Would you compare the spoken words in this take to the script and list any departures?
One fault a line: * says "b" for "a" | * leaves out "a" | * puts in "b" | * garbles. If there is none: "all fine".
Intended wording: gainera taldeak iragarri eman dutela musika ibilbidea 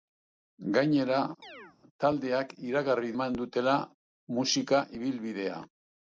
all fine